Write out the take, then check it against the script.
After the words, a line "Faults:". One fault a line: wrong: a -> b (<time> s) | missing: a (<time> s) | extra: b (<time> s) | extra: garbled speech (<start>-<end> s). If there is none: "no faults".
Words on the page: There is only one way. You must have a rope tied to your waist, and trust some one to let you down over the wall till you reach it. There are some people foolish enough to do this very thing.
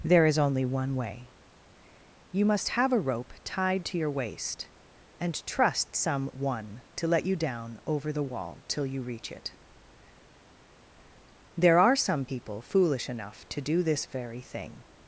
There is only one way. You must have a rope tied to your waist, and trust some one to let you down over the wall till you reach it. There are some people foolish enough to do this very thing.
Faults:
no faults